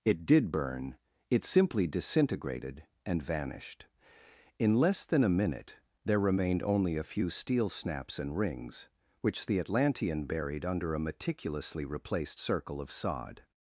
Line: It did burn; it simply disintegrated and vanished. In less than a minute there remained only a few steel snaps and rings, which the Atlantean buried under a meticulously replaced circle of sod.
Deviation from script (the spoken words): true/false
false